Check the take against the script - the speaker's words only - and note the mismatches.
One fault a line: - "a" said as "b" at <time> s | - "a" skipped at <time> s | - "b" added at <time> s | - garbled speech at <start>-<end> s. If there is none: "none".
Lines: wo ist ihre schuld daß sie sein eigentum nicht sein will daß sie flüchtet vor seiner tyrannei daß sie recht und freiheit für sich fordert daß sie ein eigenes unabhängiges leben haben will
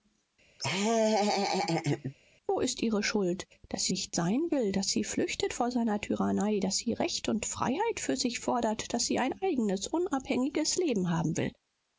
- "sein eigentum" skipped at 3.9 s